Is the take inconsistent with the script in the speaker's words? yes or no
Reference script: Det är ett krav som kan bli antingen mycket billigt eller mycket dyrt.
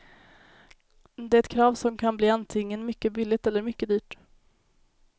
no